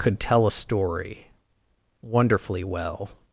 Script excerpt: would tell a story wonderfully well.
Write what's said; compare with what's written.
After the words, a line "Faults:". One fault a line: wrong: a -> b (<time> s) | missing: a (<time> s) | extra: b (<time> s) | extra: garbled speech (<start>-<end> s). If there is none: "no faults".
could tell a story wonderfully well.
Faults:
wrong: would -> could (0.0 s)